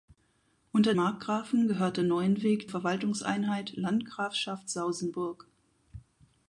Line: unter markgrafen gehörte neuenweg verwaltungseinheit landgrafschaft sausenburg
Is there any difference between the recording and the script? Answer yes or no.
no